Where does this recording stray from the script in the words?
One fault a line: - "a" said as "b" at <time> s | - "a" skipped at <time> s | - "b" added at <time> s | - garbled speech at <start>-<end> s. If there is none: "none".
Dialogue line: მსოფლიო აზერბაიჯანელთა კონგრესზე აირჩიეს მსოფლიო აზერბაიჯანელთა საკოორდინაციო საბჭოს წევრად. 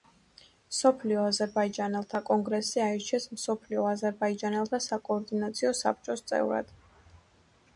none